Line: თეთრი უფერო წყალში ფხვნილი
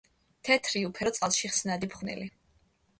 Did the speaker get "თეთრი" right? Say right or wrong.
right